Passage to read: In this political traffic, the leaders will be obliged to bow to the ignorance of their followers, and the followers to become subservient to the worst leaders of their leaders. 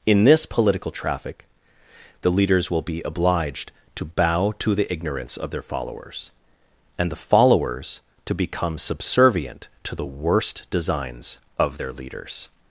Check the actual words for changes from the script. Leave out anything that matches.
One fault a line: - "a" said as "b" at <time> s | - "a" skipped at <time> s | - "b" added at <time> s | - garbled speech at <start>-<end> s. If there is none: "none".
- "leaders" said as "designs" at 10.7 s